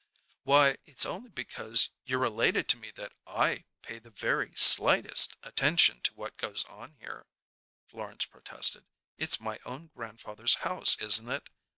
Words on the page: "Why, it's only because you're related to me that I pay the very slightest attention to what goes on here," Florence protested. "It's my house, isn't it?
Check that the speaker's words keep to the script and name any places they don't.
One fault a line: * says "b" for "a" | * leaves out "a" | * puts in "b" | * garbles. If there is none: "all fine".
* puts in "own grandfather's"